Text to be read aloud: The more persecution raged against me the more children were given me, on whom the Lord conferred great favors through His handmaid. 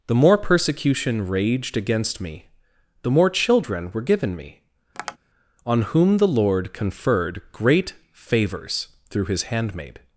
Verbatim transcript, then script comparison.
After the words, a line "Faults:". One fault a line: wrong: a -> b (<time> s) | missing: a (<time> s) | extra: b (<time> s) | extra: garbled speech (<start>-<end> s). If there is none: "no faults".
The more persecution raged against me the more children were given me, on whom the Lord conferred great favors through His handmaid.
Faults:
no faults